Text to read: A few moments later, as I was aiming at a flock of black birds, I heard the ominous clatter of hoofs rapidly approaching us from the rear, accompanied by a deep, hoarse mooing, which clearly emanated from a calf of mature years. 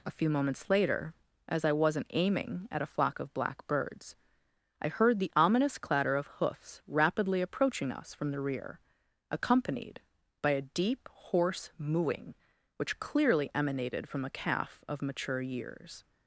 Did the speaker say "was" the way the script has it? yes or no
no